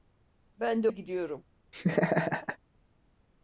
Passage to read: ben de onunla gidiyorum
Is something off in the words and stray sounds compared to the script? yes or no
yes